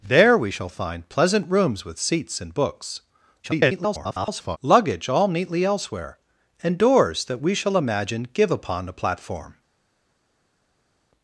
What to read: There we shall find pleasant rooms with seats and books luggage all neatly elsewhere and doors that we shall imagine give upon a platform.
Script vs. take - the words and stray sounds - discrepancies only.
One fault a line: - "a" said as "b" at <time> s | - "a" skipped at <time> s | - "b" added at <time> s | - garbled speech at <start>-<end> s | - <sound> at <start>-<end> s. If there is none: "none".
- garbled speech at 3.4-4.6 s